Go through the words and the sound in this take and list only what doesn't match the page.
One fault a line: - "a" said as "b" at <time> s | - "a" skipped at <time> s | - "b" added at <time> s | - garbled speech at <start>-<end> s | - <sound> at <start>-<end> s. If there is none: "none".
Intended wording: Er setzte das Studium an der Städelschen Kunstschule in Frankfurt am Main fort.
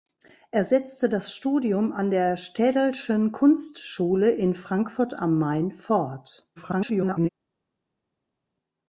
- garbled speech at 6.6-7.3 s